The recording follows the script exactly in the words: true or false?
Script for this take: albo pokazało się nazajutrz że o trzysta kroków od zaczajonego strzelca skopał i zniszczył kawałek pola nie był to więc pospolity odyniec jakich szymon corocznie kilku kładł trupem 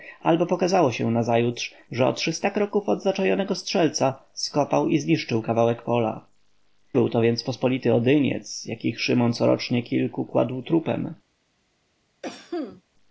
false